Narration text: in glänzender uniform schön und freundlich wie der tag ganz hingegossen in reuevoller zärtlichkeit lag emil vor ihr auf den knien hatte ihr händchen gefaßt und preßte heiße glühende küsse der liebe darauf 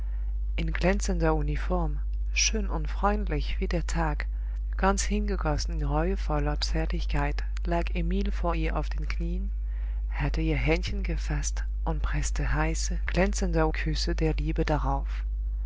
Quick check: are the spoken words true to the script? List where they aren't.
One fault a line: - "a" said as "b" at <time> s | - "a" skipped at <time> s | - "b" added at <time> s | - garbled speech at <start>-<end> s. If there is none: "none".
- "glühende" said as "glänzender" at 13.1 s